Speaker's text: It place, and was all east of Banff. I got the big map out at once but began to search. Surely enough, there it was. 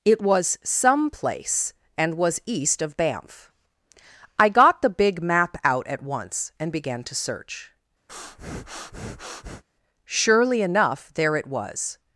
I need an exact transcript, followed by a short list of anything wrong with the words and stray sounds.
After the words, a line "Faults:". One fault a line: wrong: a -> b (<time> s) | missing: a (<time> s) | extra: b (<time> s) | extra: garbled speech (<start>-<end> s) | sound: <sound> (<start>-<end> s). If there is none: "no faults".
It was some place, and was east of Banff. I got the big map out at once and began to search. Surely enough, there it was.
Faults:
extra: was some (0.2 s)
missing: all (2.4 s)
wrong: but -> and (6.6 s)
sound: breath (8.1-9.6 s)